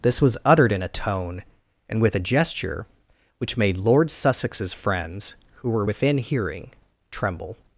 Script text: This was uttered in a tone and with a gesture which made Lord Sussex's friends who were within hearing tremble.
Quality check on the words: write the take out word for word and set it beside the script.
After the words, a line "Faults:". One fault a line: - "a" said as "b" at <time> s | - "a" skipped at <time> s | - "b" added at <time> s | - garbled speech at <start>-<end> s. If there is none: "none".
This was uttered in a tone and with a gesture which made Lord Sussex's friends who were within hearing tremble.
Faults:
none